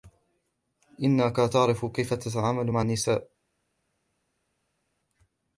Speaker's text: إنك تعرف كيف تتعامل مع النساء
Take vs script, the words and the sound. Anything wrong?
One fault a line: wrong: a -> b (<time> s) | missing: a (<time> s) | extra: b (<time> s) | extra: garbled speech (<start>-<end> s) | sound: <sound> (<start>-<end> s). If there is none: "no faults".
no faults